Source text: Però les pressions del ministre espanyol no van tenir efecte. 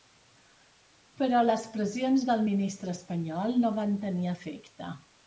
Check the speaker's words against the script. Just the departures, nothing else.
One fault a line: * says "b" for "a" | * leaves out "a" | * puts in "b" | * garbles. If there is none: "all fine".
all fine